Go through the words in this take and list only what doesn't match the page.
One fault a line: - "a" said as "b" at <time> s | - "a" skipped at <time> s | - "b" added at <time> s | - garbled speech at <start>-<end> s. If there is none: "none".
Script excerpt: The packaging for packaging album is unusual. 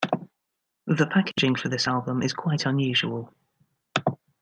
- "packaging" said as "this" at 1.7 s
- "quite" added at 2.3 s